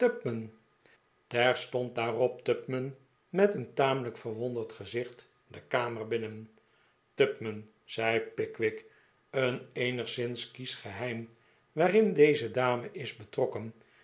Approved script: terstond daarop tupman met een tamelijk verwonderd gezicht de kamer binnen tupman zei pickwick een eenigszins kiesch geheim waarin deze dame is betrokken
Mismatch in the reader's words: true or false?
false